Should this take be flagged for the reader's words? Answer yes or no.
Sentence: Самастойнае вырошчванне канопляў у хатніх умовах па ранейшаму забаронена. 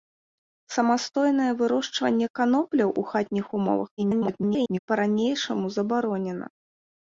yes